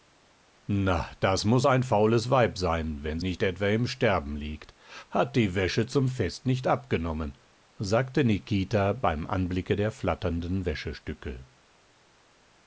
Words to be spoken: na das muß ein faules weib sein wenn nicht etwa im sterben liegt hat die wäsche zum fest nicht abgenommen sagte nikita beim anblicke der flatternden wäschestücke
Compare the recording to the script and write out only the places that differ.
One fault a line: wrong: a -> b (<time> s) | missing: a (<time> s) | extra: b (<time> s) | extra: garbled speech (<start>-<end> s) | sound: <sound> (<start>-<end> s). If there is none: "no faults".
no faults